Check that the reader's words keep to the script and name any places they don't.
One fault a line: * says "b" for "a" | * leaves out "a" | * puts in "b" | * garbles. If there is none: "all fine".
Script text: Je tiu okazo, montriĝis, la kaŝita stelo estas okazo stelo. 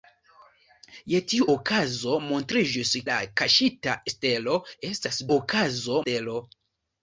all fine